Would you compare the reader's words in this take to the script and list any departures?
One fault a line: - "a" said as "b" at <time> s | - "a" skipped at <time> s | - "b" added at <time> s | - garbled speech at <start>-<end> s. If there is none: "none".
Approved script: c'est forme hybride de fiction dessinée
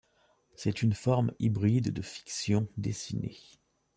- "une" added at 0.8 s